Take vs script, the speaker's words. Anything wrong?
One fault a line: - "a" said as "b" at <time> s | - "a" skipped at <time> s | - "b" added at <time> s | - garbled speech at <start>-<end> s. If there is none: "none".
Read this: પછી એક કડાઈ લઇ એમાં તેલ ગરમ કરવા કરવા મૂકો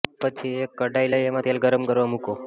- "કરવા" skipped at 2.1 s